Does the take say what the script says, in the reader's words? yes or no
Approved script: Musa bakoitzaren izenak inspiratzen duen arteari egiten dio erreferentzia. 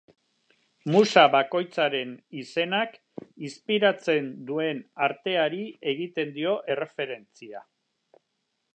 yes